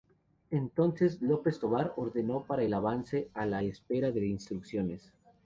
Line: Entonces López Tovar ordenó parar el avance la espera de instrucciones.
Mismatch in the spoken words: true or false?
true